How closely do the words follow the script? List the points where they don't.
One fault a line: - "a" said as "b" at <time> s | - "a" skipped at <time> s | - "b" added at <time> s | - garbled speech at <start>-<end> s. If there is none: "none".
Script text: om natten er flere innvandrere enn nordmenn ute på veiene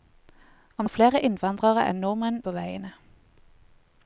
- "natten" skipped at 0.8 s
- "ute" skipped at 2.4 s